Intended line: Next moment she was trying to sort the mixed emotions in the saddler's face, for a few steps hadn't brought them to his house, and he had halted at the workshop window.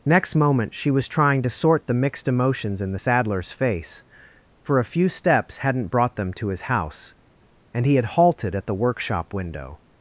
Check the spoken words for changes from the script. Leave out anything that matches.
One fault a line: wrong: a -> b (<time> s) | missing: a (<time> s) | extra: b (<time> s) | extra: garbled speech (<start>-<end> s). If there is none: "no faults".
no faults